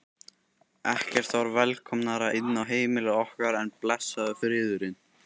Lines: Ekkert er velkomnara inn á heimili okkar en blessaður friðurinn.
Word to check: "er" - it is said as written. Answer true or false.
false